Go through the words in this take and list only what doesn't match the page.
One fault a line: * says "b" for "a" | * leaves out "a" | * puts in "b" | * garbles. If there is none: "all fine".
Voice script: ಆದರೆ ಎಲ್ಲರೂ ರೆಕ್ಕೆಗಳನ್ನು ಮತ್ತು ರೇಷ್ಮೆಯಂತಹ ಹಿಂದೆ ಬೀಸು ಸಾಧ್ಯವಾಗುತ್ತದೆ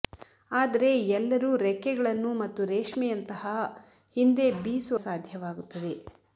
all fine